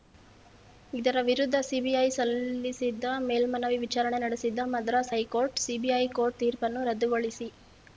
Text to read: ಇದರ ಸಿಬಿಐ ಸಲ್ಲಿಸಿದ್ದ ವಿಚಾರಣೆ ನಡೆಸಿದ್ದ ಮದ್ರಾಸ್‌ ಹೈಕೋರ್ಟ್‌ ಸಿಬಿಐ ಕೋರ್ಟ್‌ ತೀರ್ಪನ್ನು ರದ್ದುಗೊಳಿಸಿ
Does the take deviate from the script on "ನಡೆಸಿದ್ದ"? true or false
false